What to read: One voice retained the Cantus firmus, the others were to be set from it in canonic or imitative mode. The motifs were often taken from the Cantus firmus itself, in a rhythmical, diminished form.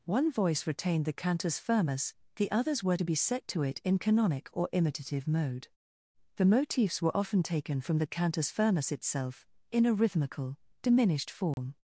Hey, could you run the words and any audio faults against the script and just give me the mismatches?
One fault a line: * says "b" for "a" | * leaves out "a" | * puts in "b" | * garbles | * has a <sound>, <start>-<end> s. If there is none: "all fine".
* says "to" for "from"
* has a dropout, 11.5-11.6 s